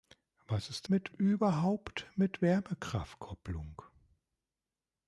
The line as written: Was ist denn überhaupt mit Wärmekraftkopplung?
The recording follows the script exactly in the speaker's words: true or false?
false